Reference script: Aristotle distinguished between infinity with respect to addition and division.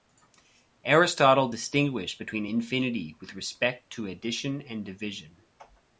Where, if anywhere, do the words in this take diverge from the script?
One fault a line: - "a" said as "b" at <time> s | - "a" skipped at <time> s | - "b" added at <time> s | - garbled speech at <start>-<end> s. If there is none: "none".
none